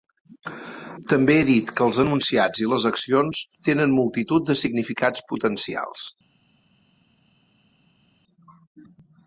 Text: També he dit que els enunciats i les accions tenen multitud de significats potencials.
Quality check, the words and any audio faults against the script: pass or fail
pass